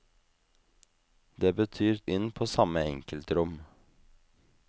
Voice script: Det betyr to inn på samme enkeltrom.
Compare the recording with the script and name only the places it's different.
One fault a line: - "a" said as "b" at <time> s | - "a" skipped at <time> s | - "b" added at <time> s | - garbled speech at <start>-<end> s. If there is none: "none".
- "to" skipped at 2.0 s